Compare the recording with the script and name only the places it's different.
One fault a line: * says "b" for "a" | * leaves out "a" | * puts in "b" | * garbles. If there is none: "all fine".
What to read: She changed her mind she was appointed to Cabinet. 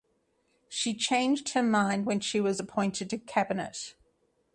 * puts in "when"